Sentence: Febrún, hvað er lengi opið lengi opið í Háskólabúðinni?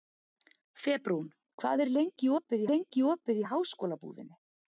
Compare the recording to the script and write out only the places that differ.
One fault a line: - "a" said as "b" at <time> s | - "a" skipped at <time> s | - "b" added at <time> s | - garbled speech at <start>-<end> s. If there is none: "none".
none